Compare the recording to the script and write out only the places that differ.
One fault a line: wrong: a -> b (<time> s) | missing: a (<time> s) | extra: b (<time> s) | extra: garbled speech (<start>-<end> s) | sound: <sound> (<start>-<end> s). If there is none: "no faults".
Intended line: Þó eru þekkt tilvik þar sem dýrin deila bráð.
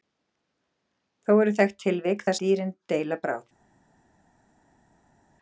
missing: sem (2.4 s)